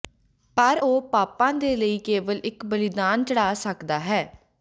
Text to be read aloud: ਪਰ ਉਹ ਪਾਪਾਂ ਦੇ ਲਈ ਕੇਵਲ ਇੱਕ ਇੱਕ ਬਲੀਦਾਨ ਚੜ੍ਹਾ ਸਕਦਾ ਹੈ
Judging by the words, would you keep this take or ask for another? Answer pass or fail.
fail